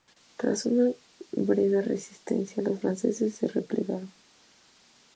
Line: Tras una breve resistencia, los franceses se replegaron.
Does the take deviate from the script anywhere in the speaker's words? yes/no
no